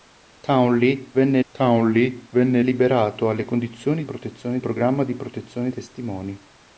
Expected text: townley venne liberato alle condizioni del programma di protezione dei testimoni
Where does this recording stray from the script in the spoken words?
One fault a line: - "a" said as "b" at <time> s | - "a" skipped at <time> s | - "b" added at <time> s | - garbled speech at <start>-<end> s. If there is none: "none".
- "townley venne" added at 1.5 s
- "del" said as "protezione" at 4.0 s
- "dei" skipped at 5.7 s